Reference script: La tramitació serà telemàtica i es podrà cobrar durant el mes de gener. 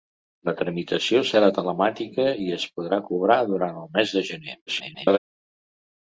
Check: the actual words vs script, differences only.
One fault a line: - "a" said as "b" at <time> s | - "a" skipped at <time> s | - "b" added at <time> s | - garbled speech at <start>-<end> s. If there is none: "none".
- garbled speech at 4.7-5.2 s